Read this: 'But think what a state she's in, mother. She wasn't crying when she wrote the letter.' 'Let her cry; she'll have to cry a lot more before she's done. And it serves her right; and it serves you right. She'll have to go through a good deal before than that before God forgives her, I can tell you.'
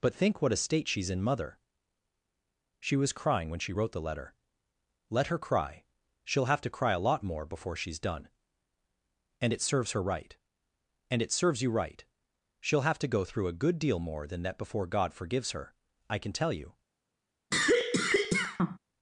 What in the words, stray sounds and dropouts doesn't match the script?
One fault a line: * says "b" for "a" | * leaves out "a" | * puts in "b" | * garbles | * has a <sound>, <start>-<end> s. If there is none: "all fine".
* says "was" for "wasn't"
* says "more" for "before"
* has a cough, 17.5-18.8 s